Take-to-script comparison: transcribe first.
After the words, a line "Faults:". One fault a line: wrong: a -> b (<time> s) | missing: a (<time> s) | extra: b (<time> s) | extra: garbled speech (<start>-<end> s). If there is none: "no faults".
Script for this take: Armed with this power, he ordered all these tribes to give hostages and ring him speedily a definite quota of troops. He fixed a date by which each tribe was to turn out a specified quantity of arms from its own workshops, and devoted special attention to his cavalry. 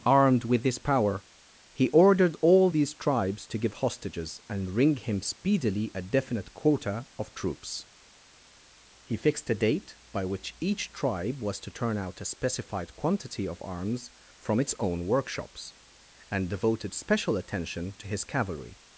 Armed with this power, he ordered all these tribes to give hostages and ring him speedily a definite quota of troops. He fixed a date by which each tribe was to turn out a specified quantity of arms from its own workshops, and devoted special attention to his cavalry.
Faults:
no faults